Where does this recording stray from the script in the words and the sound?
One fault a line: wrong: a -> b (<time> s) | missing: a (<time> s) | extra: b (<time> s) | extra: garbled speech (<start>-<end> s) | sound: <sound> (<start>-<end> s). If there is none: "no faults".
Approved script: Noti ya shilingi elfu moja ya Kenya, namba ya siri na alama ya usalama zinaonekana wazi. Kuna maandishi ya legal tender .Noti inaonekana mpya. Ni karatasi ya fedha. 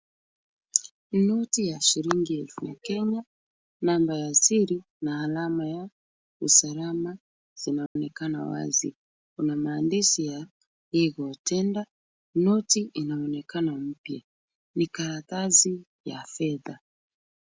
missing: moja (2.7 s)
sound: dropout (7.9-8.0 s)